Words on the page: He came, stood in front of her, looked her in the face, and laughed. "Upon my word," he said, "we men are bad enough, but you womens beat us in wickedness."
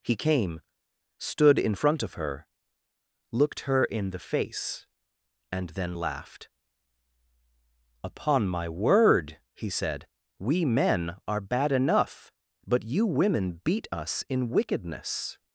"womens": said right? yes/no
no